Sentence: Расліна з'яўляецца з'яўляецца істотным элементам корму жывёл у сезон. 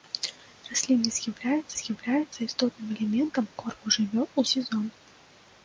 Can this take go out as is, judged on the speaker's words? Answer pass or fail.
pass